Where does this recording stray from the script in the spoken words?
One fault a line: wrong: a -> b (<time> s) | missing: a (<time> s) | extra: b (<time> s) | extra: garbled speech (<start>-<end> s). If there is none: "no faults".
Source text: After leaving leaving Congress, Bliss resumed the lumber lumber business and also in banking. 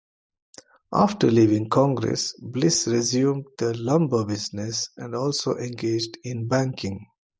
missing: leaving (1.7 s)
missing: lumber (4.2 s)
extra: engaged (5.6 s)